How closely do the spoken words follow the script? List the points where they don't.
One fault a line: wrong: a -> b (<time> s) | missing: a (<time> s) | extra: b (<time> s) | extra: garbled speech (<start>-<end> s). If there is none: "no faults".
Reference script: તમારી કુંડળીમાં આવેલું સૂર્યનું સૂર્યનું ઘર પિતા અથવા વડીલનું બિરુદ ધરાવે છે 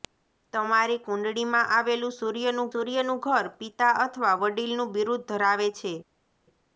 no faults